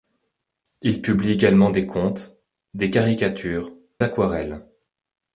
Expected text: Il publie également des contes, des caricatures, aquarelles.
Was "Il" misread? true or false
false